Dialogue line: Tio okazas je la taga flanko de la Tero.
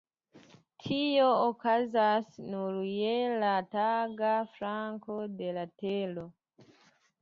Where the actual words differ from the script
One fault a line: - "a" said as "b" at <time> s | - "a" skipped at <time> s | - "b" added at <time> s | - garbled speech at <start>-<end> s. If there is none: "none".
- "nur" added at 2.5 s